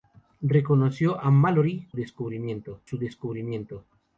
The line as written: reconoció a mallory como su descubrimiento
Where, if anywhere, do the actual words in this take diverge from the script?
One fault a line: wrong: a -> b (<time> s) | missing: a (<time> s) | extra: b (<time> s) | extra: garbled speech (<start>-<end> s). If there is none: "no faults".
wrong: como -> descubrimiento (1.9 s)